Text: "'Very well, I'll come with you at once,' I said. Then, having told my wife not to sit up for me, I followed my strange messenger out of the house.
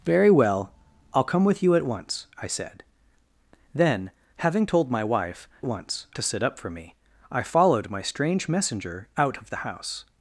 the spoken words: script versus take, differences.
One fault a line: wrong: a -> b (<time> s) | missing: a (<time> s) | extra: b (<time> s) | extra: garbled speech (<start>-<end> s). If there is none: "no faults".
wrong: not -> once (5.6 s)